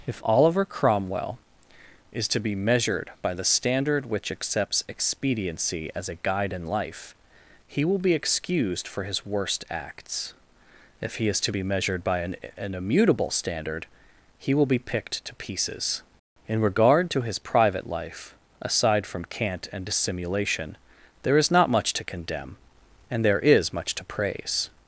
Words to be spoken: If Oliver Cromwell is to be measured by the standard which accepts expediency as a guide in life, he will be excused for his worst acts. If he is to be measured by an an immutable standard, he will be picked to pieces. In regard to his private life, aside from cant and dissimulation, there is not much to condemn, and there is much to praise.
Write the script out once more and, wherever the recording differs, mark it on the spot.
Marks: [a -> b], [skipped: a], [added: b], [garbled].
If Oliver Cromwell is to be measured by the standard which accepts expediency as a guide in life, he will be excused for his worst acts. If he is to be measured by an an immutable standard, he will be picked to pieces. In regard to his private life, aside from cant and dissimulation, there is not much to condemn, and there is much to praise.